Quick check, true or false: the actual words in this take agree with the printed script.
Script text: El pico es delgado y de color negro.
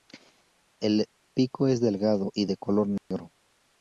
true